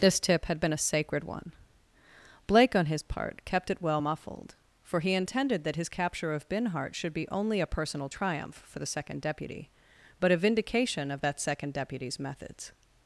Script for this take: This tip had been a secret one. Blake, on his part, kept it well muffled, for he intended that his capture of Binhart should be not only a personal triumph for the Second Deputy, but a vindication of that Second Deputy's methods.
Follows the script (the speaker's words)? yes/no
no